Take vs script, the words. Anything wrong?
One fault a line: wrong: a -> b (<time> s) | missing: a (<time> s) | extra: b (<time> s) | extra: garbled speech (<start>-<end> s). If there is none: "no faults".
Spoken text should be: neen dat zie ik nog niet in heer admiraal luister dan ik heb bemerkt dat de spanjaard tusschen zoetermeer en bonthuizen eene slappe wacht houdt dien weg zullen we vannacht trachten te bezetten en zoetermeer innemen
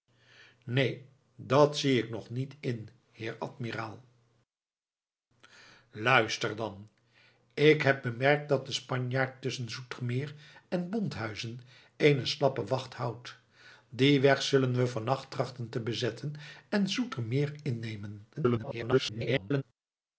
extra: garbled speech (18.3-19.6 s)